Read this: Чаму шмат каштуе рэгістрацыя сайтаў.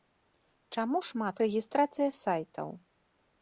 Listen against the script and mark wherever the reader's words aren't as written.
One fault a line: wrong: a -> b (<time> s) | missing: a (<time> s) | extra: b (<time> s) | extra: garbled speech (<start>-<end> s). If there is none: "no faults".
missing: каштуе (1.4 s)